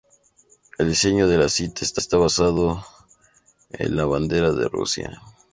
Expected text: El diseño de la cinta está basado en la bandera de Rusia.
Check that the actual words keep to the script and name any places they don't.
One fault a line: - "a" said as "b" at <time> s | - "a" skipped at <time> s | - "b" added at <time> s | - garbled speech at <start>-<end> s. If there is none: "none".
- "está" added at 2.0 s